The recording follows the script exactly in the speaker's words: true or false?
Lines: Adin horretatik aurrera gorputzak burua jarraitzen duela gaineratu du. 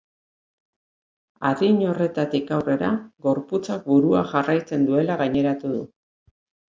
true